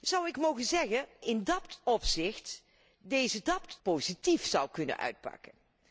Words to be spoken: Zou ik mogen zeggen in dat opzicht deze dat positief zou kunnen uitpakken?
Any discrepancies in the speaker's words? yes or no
no